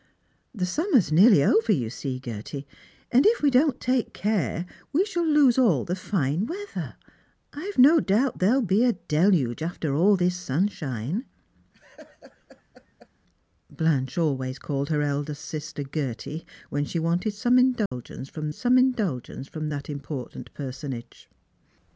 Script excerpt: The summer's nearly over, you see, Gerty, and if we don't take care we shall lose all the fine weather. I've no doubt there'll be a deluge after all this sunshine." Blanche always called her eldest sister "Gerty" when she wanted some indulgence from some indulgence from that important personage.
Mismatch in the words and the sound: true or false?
true